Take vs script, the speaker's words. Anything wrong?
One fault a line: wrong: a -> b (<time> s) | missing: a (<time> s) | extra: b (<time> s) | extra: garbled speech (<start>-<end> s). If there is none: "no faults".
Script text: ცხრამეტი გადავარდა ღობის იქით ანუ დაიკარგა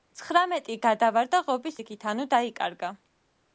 no faults